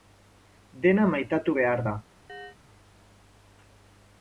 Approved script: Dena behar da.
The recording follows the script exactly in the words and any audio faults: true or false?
false